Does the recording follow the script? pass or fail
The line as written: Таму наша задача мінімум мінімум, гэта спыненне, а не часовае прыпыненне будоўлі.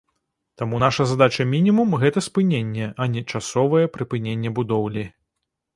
fail